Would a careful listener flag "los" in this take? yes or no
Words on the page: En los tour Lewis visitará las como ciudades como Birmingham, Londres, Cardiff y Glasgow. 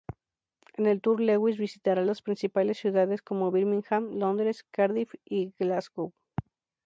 yes